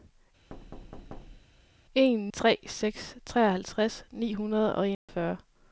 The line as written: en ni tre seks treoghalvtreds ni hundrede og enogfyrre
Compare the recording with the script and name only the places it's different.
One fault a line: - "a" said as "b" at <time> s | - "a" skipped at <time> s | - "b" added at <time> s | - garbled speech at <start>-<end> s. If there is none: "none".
- "ni" skipped at 2.3 s